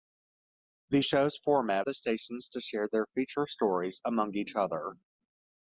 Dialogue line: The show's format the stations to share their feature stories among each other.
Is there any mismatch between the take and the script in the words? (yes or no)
no